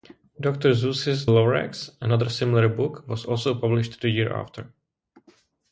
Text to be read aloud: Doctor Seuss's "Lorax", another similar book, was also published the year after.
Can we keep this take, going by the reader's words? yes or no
yes